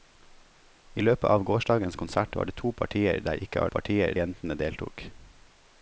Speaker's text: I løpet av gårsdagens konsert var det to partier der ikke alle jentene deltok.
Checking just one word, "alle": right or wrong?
wrong